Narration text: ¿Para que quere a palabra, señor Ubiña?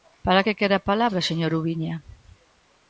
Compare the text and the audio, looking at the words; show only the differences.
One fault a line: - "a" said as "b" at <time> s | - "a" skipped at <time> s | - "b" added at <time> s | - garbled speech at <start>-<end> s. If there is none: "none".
none